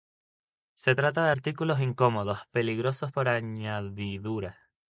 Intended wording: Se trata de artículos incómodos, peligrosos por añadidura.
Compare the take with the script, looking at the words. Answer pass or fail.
pass